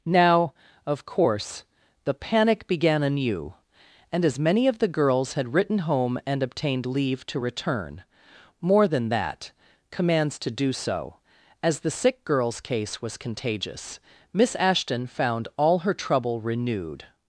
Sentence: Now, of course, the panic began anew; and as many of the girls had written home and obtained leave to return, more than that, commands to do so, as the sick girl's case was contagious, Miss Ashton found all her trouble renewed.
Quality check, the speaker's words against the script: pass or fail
pass